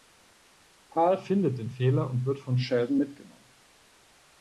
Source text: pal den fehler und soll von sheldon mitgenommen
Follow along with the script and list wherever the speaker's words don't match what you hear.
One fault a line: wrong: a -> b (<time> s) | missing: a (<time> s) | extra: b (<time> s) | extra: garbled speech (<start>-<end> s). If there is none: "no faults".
extra: findet (1.2 s)
wrong: soll -> wird (2.2 s)